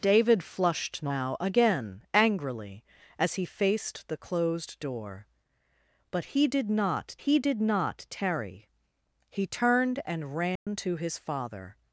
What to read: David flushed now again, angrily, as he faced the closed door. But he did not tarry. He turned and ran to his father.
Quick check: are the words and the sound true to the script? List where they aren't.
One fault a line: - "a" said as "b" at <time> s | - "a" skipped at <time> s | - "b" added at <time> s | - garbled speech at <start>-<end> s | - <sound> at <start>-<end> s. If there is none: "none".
- "he did not" added at 7.2 s
- dropout at 10.6-10.7 s